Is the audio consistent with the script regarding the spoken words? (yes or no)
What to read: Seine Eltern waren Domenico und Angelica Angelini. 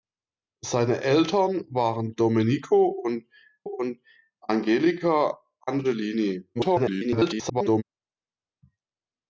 no